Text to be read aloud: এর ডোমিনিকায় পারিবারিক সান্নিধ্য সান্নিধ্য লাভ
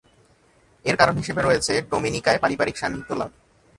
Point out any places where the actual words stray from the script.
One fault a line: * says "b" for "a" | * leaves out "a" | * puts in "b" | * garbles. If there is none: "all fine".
* puts in "কারণ হিসেবে রয়েছে"
* leaves out "সান্নিধ্য"